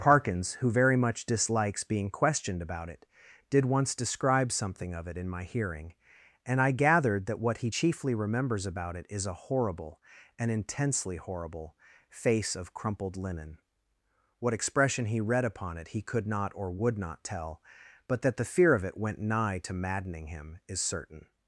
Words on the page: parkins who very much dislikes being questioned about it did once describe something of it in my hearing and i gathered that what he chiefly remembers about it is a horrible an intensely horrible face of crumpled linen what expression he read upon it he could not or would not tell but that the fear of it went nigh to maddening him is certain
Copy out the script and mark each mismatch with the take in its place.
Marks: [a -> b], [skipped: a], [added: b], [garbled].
parkins who very much dislikes being questioned about it did once describe something of it in my hearing and i gathered that what he chiefly remembers about it is a horrible an intensely horrible face of crumpled linen what expression he read upon it he could not or would not tell but that the fear of it went nigh to maddening him is certain